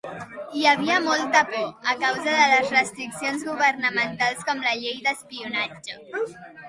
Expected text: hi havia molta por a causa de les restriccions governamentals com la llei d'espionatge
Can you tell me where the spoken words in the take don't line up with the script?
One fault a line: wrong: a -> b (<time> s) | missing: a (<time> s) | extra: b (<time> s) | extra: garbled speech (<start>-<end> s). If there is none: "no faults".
no faults